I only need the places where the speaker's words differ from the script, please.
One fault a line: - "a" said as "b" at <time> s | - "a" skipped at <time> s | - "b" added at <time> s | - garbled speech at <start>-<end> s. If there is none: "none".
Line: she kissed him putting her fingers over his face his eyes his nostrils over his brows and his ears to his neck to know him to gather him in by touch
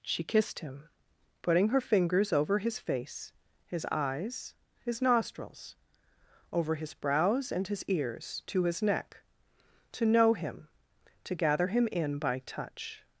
none